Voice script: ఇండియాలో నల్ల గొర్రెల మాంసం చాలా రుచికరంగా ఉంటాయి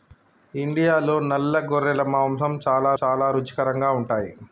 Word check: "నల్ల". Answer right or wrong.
right